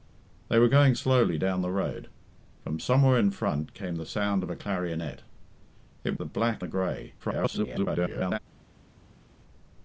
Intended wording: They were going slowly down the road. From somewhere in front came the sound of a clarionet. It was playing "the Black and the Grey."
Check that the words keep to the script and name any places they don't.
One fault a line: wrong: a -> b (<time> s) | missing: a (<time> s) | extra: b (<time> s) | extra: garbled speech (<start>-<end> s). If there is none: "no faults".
missing: was playing (6.1 s)
missing: and (6.6 s)
extra: garbled speech (7.2-8.4 s)